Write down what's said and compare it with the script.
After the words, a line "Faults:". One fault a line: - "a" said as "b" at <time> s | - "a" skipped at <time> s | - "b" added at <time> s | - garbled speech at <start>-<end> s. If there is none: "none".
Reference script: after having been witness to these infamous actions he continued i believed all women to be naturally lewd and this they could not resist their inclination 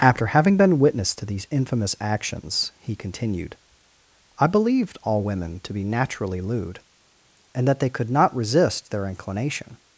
after having been witness to these infamous actions he continued i believed all women to be naturally lewd and that they could not resist their inclination
Faults:
- "this" said as "that" at 7.7 s